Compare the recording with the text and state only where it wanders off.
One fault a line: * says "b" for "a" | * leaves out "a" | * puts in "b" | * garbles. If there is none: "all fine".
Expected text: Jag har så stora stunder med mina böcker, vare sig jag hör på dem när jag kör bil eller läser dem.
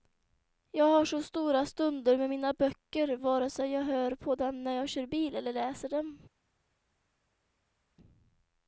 all fine